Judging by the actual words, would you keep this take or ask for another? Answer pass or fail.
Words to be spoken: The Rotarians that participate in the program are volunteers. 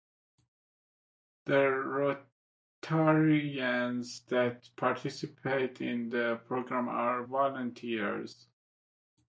pass